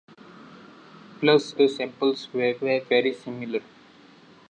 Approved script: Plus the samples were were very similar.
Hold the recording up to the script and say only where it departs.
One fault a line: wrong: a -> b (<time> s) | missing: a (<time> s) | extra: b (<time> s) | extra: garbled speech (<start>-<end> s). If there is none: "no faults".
no faults